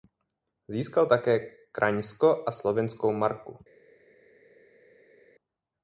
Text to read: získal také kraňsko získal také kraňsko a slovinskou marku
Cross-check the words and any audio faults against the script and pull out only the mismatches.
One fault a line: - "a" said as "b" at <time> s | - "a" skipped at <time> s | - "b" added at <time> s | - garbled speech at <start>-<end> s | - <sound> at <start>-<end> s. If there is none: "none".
- "získal také kraňsko" skipped at 2.4 s